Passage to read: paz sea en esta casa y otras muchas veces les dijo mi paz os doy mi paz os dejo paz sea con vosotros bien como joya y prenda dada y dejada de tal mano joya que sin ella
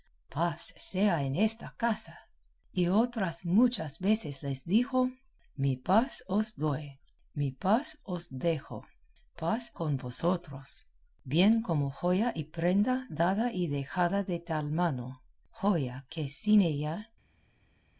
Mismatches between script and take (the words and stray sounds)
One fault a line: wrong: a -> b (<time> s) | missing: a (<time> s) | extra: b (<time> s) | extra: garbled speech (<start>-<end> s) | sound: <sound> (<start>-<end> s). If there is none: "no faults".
missing: sea (9.7 s)